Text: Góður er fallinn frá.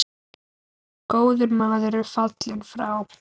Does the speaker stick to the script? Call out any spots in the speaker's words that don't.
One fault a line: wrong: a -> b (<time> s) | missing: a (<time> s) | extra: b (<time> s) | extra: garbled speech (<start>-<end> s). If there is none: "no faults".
extra: maður (1.6 s)